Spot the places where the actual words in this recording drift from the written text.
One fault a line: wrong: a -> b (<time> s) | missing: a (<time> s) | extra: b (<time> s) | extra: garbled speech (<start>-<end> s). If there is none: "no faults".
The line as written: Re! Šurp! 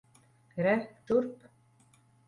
no faults